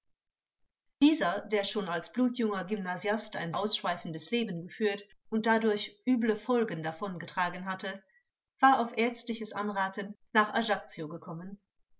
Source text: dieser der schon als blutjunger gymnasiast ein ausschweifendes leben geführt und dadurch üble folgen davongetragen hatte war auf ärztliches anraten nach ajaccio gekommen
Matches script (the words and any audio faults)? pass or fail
pass